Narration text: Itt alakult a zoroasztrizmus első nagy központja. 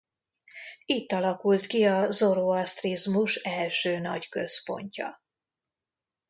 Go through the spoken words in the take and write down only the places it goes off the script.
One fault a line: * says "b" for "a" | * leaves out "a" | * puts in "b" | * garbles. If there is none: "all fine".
* puts in "ki"